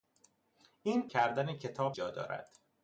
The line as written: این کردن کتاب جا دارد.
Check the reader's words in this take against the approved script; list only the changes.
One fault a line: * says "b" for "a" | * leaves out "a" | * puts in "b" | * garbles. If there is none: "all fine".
all fine